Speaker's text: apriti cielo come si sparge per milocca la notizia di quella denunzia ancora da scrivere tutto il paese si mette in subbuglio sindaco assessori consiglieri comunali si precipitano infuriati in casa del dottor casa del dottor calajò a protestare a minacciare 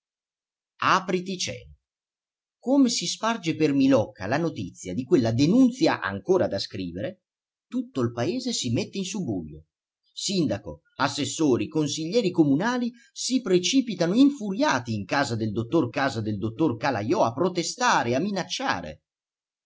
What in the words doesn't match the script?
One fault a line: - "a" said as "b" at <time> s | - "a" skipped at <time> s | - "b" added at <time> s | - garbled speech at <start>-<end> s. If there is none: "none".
none